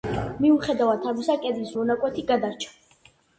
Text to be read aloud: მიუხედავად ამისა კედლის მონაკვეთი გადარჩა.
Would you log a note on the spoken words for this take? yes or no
no